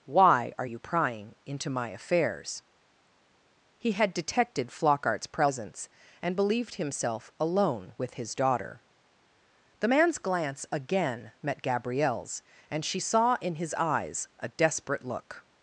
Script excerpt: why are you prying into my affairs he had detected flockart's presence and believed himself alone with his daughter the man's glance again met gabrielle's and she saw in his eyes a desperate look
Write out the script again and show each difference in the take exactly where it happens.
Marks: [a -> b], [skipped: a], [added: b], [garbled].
why are you prying into my affairs he had detected flockart's presence and believed himself alone with his daughter the man's glance again met gabrielle's and she saw in his eyes a desperate look